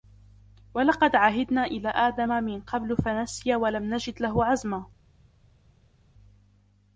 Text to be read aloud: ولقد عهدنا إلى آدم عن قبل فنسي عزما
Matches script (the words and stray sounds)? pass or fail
fail